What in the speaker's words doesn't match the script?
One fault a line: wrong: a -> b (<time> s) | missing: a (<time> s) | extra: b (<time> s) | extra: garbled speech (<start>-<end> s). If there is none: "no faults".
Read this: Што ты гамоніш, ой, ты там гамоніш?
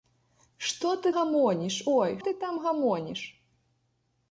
no faults